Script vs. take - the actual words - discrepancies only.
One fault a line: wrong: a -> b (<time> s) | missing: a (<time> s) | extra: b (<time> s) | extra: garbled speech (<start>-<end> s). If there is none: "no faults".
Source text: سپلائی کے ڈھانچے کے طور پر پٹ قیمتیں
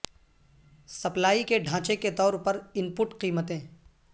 extra: ان (2.7 s)